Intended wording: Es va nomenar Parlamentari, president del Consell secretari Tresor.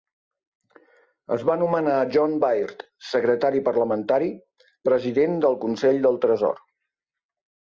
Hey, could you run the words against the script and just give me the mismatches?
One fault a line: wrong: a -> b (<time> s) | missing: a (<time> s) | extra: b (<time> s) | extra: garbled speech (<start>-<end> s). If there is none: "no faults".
extra: John Baird secretari (2.1 s)
wrong: secretari -> del (6.1 s)